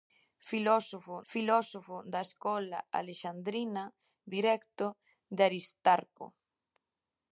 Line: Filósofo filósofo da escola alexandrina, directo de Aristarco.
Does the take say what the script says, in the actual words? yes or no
yes